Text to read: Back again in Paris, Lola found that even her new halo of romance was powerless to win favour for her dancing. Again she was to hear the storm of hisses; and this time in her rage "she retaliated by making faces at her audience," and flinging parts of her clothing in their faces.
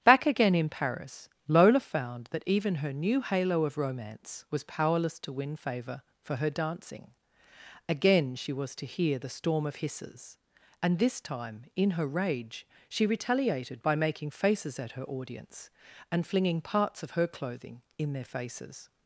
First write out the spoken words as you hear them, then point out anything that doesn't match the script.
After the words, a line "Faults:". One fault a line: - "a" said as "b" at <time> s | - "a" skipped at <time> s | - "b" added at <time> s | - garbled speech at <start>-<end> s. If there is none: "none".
Back again in Paris, Lola found that even her new halo of romance was powerless to win favour for her dancing. Again she was to hear the storm of hisses; and this time in her rage "she retaliated by making faces at her audience," and flinging parts of her clothing in their faces.
Faults:
none